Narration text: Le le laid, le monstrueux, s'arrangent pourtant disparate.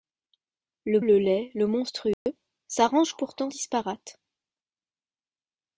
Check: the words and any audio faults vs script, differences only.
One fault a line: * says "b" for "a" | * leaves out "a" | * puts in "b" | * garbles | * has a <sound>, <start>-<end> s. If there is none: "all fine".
* has a dropout, 2.1-2.3 s